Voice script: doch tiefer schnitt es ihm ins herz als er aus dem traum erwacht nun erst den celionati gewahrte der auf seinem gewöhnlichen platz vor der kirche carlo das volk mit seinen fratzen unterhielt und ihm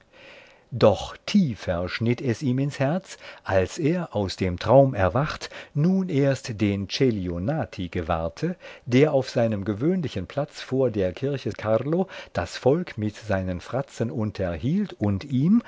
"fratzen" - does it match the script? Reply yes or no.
yes